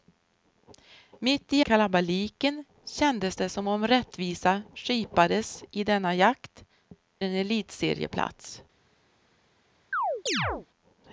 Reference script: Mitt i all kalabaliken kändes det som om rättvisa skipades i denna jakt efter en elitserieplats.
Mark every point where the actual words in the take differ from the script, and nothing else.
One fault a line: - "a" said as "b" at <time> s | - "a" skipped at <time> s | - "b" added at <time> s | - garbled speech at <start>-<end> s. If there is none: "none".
- "all" skipped at 1.6 s
- "efter" skipped at 6.6 s